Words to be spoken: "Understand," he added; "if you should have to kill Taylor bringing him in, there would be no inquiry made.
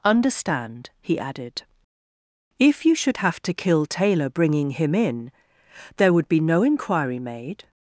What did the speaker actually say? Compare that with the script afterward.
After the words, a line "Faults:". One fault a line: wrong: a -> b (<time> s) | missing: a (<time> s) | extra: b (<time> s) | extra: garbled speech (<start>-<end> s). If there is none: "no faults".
"Understand," he added; "if you should have to kill Taylor bringing him in, there would be no inquiry made.
Faults:
no faults